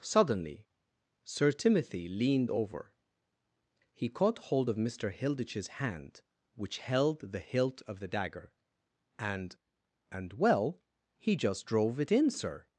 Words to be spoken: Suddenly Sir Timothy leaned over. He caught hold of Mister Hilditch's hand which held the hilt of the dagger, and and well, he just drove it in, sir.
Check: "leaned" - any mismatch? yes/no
no